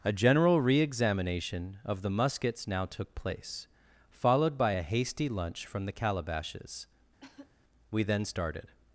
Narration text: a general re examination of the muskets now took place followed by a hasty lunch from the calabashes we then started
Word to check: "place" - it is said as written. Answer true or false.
true